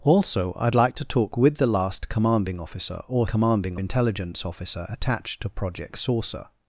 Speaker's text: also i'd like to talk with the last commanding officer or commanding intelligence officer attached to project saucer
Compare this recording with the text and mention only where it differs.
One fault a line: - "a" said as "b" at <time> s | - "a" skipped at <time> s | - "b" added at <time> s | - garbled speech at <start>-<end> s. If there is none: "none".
none